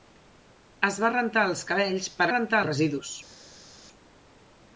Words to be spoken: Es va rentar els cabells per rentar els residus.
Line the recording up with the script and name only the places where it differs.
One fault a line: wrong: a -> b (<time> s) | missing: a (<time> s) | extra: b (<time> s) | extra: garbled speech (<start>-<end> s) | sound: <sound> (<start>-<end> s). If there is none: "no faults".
no faults